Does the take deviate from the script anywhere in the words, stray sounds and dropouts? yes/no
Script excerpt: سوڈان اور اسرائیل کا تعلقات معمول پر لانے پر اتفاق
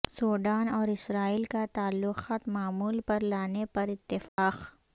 yes